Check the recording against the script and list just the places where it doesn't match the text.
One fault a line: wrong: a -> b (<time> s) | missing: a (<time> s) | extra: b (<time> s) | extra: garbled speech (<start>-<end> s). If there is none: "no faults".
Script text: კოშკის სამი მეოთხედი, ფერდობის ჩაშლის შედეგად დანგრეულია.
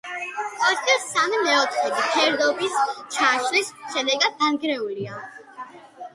no faults